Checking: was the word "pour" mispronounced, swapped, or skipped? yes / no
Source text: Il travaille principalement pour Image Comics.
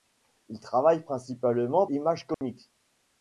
yes